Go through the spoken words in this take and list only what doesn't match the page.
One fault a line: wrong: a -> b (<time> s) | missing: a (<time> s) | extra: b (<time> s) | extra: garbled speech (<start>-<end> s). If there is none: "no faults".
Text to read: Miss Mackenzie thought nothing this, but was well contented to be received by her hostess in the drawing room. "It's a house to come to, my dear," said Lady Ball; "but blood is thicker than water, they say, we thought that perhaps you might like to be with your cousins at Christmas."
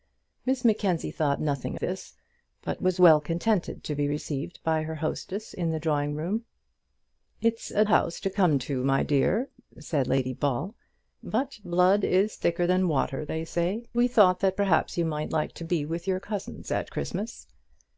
no faults